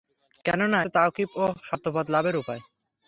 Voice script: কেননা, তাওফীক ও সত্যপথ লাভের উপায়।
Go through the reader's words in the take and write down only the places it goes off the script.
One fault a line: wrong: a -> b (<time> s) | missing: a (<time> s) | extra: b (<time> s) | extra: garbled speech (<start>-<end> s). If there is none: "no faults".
no faults